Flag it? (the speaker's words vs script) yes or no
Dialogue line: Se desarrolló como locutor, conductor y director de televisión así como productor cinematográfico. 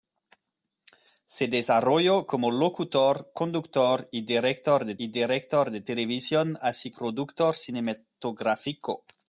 yes